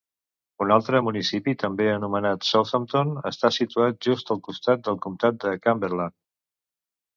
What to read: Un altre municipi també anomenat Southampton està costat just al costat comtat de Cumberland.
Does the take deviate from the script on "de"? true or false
false